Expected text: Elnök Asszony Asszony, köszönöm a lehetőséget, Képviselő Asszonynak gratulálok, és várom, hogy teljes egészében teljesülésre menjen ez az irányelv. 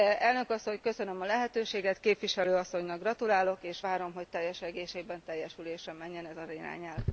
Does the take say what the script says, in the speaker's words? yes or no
no